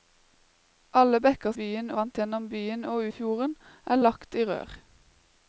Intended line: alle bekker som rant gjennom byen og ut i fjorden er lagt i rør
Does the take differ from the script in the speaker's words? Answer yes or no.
yes